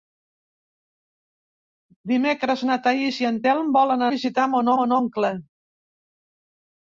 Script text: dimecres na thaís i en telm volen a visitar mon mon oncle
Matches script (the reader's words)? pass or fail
pass